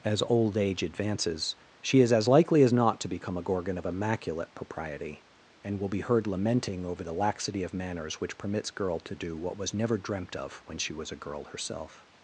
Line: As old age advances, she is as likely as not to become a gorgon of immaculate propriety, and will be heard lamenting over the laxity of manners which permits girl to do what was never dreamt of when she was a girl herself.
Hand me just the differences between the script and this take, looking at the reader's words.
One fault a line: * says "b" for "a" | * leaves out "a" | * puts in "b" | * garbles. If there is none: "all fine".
all fine